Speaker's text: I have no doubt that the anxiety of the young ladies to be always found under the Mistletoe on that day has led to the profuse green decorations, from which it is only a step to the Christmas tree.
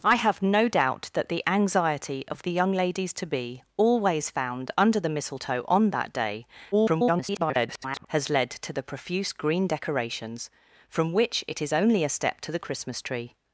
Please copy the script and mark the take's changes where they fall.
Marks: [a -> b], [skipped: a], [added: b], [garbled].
I have no doubt that the anxiety of the young ladies to be always found under the Mistletoe on that day [garbled] has led to the profuse green decorations, from which it is only a step to the Christmas tree.